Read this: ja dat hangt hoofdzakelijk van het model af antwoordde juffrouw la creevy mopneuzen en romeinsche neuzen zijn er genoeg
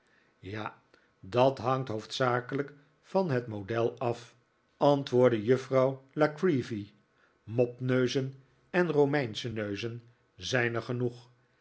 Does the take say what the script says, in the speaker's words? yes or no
yes